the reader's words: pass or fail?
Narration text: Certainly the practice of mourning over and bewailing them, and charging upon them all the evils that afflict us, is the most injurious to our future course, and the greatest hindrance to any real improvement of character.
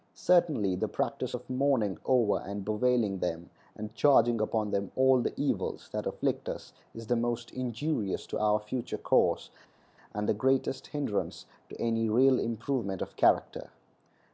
pass